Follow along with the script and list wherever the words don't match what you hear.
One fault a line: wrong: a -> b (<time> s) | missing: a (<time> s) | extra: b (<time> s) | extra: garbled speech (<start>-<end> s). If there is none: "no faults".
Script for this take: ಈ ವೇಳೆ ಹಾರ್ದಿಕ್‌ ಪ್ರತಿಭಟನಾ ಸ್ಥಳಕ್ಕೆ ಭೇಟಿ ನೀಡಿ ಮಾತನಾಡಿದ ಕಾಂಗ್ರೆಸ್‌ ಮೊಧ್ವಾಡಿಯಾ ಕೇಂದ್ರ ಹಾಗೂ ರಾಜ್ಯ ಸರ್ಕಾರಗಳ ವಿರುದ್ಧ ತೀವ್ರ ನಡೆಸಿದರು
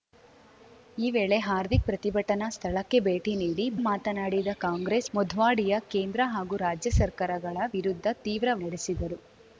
no faults